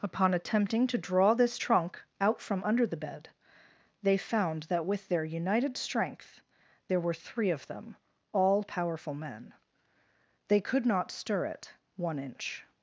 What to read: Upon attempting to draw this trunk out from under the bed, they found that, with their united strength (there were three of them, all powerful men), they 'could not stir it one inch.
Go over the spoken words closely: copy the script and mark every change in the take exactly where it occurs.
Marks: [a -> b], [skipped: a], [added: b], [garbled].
Upon attempting to draw this trunk out from under the bed, they found that, with their united strength (there were three of them, all powerful men), they 'could not stir it one inch.